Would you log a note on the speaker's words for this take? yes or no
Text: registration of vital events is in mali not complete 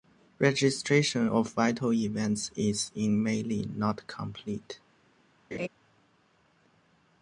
no